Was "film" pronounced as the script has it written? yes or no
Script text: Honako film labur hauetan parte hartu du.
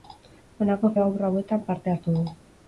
no